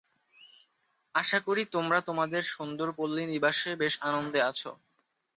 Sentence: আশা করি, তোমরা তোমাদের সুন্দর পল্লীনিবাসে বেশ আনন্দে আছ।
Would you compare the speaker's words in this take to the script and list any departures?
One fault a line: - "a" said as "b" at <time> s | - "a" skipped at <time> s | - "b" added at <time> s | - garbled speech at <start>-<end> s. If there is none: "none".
none